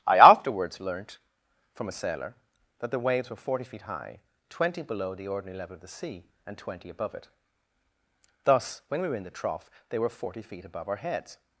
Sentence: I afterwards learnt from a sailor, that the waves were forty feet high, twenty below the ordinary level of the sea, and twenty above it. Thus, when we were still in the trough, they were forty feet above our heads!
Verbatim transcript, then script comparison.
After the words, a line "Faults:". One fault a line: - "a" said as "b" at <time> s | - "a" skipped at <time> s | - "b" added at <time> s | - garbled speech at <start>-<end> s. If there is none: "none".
I afterwards learnt from a sailor, that the waves were forty feet high, twenty below the ordinary level of the sea, and twenty above it. Thus, when we were in the trough, they were forty feet above our heads!
Faults:
- "still" skipped at 9.2 s